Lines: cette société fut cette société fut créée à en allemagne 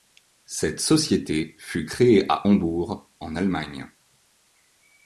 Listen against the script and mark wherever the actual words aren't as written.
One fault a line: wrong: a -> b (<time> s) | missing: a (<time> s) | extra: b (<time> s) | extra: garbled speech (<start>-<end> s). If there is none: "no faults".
missing: cette société fut (1.9 s)
extra: hambourg (2.5 s)